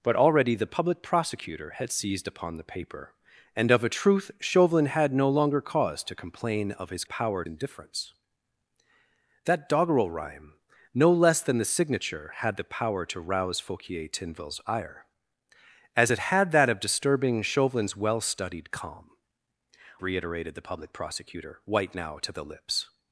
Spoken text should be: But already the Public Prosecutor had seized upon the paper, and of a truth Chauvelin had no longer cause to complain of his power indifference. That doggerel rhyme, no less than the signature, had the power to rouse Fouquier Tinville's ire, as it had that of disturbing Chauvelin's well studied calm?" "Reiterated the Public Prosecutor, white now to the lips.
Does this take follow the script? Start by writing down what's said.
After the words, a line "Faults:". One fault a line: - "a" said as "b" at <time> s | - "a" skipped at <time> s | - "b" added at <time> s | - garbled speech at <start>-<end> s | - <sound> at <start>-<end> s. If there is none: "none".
But already the Public Prosecutor had seized upon the paper, and of a truth Chauvelin had no longer cause to complain of his power indifference. That doggerel rhyme, no less than the signature, had the power to rouse Fouquier Tinville's ire, as it had that of disturbing Chauvelin's well studied calm?" "Reiterated the Public Prosecutor, white now to the lips.
Faults:
none